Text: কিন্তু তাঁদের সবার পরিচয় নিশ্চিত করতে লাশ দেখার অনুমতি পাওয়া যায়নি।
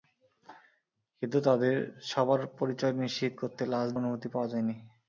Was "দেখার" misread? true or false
true